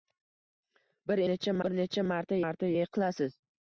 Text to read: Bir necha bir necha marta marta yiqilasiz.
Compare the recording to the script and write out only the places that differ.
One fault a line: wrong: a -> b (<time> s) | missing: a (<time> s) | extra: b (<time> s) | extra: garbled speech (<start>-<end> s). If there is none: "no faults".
no faults